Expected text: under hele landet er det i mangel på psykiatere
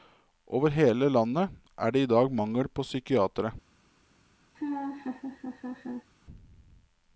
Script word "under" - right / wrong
wrong